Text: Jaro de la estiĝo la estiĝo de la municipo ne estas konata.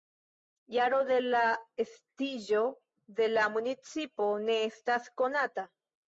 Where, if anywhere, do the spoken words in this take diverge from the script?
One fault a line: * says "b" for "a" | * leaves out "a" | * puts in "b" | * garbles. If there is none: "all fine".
* leaves out "la estiĝo"